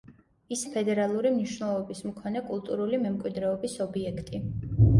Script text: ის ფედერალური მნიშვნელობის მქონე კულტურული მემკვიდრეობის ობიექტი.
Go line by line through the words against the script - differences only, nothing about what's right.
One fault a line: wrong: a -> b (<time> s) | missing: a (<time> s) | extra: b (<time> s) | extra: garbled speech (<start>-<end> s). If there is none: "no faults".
no faults